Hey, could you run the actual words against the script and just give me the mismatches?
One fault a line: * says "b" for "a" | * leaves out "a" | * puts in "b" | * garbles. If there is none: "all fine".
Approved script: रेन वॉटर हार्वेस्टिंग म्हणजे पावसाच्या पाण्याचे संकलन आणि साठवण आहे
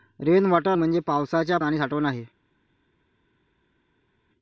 * leaves out "हार्वेस्टिंग"
* leaves out "पाण्याचे संकलन"